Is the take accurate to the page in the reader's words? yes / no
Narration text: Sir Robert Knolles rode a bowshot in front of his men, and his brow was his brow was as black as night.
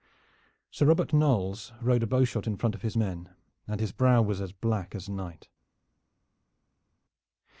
no